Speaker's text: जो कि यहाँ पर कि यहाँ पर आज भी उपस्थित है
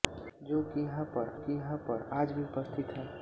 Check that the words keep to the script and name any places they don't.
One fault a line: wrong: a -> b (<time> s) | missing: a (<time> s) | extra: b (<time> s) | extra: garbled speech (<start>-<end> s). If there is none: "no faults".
no faults